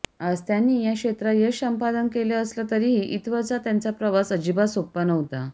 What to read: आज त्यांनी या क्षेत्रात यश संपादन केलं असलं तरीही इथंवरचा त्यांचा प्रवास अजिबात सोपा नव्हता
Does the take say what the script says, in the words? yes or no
yes